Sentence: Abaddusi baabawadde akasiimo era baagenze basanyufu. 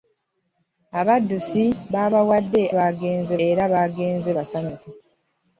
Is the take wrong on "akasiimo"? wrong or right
wrong